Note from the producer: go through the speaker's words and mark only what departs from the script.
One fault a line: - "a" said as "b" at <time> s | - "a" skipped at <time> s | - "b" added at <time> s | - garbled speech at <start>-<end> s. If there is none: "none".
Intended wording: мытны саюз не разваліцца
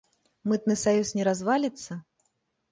none